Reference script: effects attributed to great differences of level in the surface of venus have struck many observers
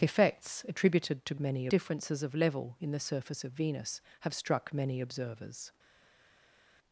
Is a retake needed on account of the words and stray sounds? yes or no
yes